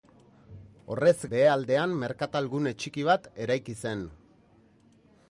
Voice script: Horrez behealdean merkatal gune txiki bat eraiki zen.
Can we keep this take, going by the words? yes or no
yes